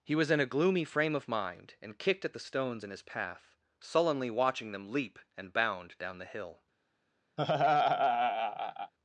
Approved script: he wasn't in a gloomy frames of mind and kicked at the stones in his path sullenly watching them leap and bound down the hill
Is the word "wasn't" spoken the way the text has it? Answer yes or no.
no